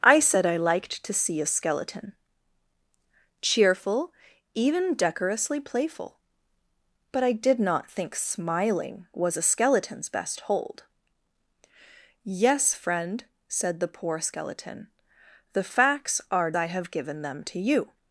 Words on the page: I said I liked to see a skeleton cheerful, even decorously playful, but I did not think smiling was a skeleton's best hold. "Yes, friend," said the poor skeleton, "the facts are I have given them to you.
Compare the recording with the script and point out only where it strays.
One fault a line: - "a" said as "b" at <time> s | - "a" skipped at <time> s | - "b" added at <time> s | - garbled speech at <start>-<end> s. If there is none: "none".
none